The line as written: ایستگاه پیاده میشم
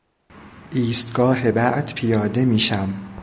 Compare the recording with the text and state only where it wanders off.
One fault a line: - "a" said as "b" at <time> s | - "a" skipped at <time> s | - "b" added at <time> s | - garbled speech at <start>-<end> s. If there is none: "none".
- "بعد" added at 1.5 s